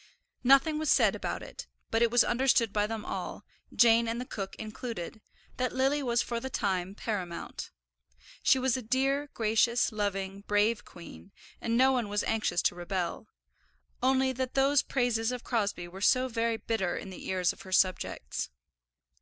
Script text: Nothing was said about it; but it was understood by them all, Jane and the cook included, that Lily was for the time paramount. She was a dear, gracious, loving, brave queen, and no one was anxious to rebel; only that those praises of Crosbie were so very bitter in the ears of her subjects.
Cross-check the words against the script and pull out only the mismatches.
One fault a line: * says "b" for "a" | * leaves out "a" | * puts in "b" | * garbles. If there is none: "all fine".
all fine